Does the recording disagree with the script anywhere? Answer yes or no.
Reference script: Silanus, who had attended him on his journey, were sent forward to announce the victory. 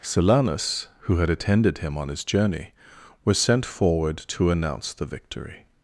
yes